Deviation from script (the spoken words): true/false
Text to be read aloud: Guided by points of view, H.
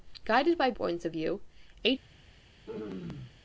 false